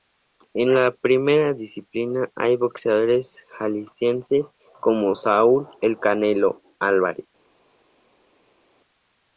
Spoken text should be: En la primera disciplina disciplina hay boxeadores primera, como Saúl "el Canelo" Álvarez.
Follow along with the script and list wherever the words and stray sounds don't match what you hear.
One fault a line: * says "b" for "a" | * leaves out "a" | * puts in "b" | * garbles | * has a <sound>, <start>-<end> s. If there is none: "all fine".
* leaves out "disciplina"
* says "jaliscienses" for "primera"